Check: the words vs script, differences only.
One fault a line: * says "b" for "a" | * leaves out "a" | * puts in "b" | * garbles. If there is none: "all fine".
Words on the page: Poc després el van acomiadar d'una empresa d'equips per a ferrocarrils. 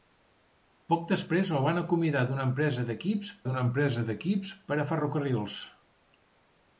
* puts in "d'una empresa d'equips"